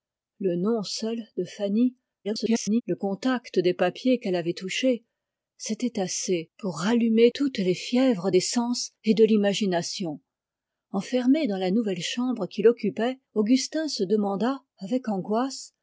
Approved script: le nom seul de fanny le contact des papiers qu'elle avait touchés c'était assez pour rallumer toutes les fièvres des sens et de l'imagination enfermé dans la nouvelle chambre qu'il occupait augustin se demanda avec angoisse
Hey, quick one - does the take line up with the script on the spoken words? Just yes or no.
no